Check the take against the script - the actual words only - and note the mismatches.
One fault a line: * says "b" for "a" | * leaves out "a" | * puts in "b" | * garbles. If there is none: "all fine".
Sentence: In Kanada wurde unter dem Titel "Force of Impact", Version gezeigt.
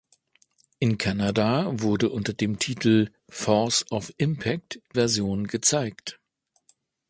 all fine